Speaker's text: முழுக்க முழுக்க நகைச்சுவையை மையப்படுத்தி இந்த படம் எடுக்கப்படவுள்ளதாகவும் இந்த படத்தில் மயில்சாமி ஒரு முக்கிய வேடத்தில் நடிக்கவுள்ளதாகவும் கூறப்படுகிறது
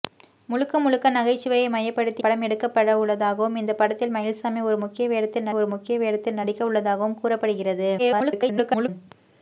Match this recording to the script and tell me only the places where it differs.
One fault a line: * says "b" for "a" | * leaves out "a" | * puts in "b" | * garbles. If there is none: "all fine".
* leaves out "இந்த"
* puts in "ஒரு முக்கிய வேடத்தில்"
* garbles